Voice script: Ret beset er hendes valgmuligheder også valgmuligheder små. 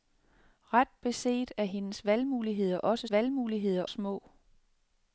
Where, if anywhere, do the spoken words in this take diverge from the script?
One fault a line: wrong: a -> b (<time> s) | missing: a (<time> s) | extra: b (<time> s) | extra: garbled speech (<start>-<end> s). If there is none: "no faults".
no faults